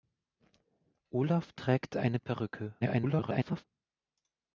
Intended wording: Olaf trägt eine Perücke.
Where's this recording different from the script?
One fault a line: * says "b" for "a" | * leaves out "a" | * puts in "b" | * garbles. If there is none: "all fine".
* garbles